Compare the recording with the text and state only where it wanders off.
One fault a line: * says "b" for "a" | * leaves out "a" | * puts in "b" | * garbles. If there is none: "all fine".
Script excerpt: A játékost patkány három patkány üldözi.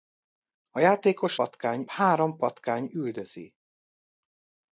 all fine